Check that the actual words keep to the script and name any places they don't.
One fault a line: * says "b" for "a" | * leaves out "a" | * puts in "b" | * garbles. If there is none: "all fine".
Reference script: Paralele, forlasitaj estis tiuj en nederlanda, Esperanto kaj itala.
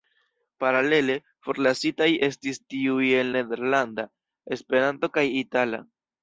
all fine